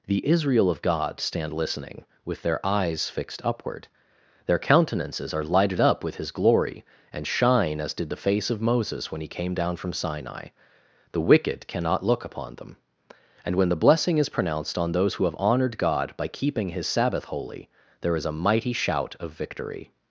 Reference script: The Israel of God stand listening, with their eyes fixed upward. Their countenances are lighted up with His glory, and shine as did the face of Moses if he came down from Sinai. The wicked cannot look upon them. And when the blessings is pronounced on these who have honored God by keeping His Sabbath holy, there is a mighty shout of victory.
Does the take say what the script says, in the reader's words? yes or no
no